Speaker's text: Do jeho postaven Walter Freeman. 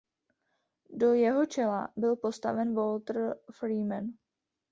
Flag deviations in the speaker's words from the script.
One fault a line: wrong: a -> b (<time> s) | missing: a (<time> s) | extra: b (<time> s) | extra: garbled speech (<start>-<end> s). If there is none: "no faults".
extra: čela byl (1.4 s)